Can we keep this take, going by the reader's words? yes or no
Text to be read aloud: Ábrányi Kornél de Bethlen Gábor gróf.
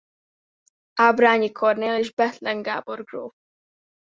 no